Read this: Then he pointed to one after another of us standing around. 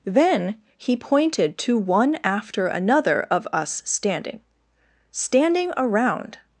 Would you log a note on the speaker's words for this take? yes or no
yes